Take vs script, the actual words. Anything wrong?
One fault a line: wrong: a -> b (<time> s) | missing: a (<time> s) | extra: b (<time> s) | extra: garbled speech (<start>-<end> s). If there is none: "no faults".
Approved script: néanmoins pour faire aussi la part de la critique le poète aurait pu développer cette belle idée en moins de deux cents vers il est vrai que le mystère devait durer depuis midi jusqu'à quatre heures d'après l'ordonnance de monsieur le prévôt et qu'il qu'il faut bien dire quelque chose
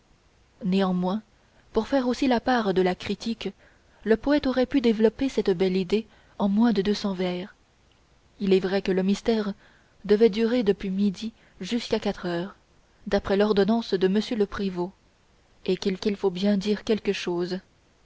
no faults